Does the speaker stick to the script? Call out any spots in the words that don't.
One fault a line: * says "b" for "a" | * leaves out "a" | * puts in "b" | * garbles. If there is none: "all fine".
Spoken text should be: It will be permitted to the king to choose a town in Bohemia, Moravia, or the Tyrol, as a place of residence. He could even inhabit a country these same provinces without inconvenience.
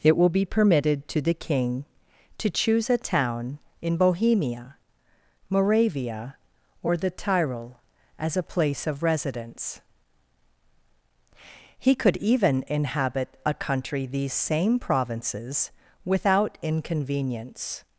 all fine